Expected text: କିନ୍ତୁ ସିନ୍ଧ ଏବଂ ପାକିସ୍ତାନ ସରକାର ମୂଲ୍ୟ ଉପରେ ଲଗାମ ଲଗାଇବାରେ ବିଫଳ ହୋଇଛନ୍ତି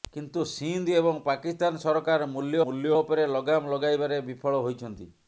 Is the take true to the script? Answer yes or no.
no